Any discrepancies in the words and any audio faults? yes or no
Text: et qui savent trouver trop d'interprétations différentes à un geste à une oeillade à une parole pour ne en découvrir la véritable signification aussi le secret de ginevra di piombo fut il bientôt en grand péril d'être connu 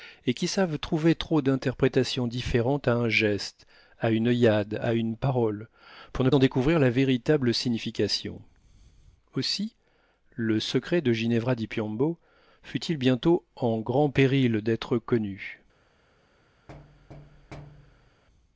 yes